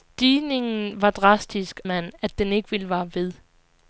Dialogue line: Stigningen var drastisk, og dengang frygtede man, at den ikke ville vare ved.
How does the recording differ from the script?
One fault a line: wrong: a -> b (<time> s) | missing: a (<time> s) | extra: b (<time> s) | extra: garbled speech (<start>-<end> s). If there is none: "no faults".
missing: og dengang frygtede (1.8 s)